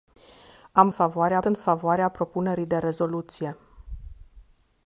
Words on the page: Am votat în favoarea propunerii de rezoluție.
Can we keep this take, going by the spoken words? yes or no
no